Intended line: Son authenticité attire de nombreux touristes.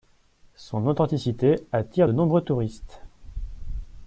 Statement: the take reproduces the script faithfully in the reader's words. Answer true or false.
true